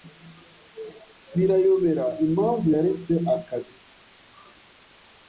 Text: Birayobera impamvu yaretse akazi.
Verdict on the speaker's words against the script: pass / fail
pass